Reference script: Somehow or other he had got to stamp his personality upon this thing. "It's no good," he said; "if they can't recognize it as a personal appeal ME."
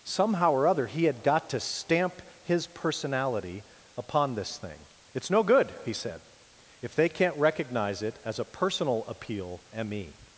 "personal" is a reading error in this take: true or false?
false